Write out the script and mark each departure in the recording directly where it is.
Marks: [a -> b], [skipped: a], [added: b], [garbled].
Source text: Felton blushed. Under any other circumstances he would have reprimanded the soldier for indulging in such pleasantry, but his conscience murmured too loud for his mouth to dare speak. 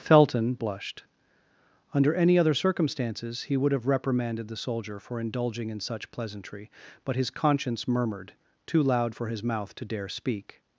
Felton blushed. Under any other circumstances he would have reprimanded the soldier for indulging in such pleasantry, but his conscience murmured too loud for his mouth to dare speak.